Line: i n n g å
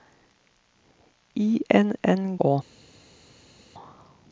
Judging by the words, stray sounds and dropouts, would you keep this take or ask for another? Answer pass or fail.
fail